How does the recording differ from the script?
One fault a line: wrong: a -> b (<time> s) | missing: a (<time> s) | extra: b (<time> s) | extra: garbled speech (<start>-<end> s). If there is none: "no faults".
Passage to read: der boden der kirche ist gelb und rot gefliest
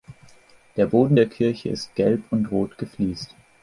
no faults